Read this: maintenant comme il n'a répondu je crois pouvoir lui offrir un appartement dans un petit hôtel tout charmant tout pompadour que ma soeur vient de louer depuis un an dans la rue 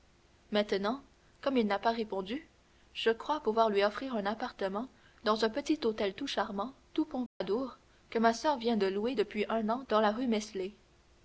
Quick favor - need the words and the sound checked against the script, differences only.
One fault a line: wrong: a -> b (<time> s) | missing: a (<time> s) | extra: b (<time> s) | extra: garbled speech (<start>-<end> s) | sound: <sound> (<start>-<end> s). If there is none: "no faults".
extra: pas (1.8 s)
sound: dropout (7.3-7.4 s)